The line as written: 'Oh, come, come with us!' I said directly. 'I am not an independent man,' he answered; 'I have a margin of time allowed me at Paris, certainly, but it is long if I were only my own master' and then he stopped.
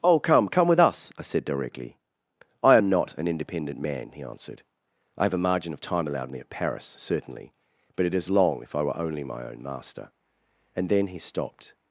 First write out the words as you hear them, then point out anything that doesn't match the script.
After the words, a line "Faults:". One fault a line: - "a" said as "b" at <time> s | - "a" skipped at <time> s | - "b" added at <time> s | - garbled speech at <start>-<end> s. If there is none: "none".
'Oh, come, come with us!' I said directly. 'I am not an independent man,' he answered; 'I have a margin of time allowed me at Paris, certainly, but it is long if I were only my own master' and then he stopped.
Faults:
none